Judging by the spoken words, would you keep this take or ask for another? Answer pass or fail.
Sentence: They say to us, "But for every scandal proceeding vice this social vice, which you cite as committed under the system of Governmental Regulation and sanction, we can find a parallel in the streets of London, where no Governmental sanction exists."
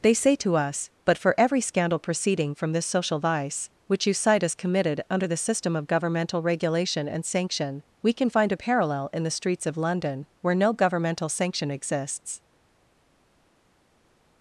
fail